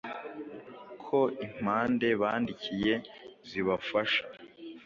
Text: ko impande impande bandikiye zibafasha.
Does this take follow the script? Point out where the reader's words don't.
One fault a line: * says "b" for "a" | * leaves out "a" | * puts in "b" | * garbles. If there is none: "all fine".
* leaves out "impande"